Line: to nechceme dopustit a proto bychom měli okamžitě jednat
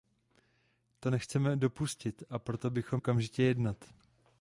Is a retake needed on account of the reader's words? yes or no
yes